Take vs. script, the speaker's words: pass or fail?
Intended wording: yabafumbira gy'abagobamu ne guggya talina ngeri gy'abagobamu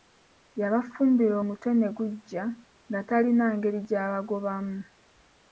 fail